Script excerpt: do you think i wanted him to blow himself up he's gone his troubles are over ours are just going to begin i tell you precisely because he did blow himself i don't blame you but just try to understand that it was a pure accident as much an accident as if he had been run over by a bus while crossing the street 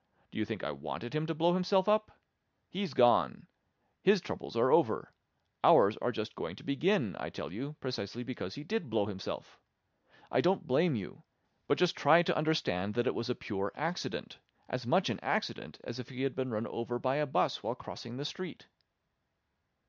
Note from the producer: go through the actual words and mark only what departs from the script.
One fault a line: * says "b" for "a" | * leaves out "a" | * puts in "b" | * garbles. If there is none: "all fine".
all fine